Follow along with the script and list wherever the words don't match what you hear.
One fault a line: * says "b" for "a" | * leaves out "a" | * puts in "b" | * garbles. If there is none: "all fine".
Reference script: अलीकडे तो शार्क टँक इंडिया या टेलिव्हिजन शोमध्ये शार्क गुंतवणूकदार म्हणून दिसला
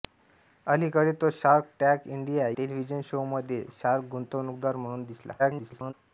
* leaves out "या"
* garbles